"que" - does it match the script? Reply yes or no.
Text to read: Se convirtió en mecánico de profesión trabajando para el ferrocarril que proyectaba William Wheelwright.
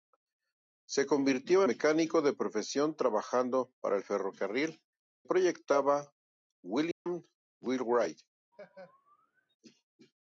no